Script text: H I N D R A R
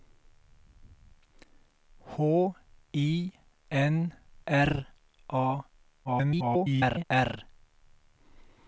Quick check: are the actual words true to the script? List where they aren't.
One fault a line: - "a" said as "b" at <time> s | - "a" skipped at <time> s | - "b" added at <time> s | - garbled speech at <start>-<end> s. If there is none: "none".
- "D" skipped at 4.1 s
- garbled speech at 6.0-7.0 s